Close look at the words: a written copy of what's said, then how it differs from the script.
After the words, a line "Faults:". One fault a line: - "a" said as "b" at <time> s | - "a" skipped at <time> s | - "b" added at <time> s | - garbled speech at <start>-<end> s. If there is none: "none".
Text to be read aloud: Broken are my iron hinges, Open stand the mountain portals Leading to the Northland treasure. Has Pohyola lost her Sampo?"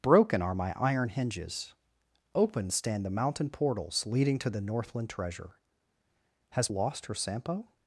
Broken are my iron hinges, Open stand the mountain portals Leading to the Northland treasure. Has Lost her Sampo?"
Faults:
- "Pohyola" skipped at 6.7 s